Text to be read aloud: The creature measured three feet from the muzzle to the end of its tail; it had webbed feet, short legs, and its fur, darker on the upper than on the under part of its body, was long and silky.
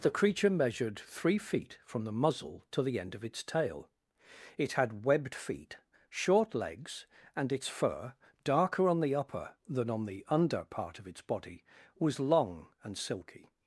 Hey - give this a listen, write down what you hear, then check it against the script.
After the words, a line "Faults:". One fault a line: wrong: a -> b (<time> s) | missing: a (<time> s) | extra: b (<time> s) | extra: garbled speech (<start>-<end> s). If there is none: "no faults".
The creature measured three feet from the muzzle to the end of its tail; it had webbed feet, short legs, and its fur, darker on the upper than on the under part of its body, was long and silky.
Faults:
no faults